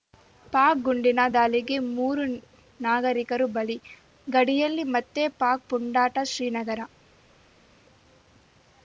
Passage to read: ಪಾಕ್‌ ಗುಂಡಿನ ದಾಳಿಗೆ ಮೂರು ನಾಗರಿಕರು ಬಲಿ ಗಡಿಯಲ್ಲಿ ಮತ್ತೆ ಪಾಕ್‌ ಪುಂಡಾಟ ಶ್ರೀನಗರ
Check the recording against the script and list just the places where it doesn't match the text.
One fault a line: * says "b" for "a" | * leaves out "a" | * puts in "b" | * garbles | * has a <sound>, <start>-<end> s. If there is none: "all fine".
all fine